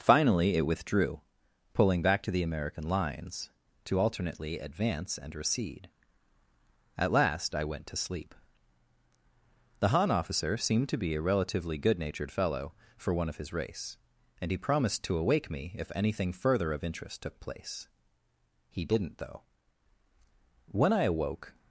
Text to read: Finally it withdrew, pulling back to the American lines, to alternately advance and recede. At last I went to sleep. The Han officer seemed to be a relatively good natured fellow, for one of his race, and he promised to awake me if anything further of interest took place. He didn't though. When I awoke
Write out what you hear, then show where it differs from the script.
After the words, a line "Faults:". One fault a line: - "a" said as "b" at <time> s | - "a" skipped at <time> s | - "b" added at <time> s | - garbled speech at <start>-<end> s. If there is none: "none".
Finally it withdrew, pulling back to the American lines, to alternately advance and recede. At last I went to sleep. The Han officer seemed to be a relatively good natured fellow, for one of his race, and he promised to awake me if anything further of interest took place. He didn't though. When I awoke
Faults:
none